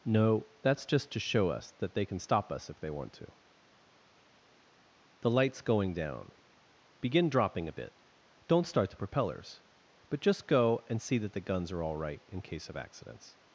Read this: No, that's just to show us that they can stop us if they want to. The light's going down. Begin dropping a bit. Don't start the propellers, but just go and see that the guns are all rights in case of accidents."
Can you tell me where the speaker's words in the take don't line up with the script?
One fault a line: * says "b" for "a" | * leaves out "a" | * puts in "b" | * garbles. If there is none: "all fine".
* says "right" for "rights"